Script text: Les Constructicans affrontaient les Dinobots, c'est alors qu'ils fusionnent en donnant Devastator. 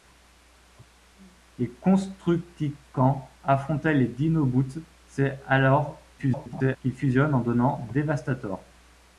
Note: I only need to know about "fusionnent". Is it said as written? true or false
true